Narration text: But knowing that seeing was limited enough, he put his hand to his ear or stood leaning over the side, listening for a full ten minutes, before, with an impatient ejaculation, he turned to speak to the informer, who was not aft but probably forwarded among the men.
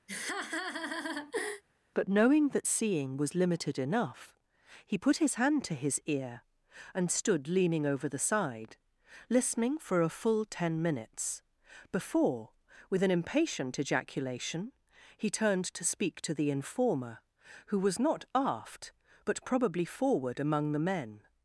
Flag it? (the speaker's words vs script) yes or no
yes